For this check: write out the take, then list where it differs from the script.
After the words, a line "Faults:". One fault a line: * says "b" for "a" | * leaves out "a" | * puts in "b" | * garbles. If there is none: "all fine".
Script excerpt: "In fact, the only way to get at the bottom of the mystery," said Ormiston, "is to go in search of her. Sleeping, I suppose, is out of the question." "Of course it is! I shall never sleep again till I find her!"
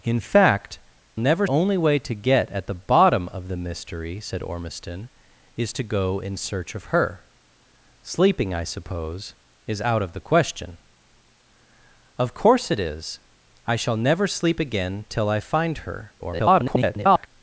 "In fact, never only way to get at the bottom of the mystery," said Ormiston, "is to go in search of her. Sleeping, I suppose, is out of the question." "Of course it is! I shall never sleep again till I find her!" [garbled]
Faults:
* says "never" for "the"
* garbles